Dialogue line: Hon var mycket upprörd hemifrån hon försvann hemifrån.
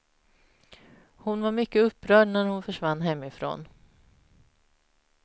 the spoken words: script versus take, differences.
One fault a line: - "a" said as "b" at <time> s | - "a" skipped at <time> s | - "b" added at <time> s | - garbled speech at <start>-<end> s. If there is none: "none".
- "hemifrån" said as "när" at 2.3 s